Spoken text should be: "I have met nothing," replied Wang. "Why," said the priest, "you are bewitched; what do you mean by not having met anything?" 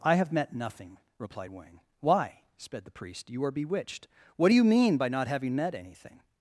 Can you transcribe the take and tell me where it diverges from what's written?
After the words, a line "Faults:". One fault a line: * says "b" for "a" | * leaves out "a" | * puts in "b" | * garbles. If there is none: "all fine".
"I have met nothing," replied Wang. "Why," sped the priest, "you are bewitched; what do you mean by not having met anything?"
Faults:
* says "sped" for "said"